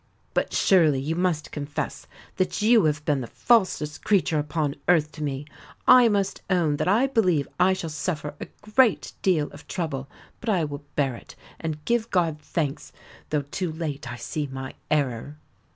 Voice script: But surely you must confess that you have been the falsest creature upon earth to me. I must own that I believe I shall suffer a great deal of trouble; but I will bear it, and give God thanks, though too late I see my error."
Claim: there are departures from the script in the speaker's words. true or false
false